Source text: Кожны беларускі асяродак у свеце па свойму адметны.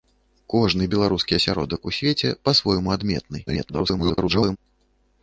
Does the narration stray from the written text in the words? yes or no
yes